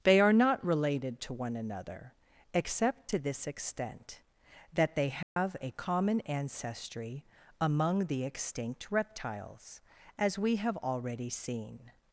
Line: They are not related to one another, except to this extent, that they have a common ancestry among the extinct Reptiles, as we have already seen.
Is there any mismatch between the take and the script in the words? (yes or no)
no